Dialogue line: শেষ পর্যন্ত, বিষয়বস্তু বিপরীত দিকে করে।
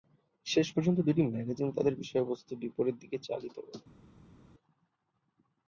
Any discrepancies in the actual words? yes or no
yes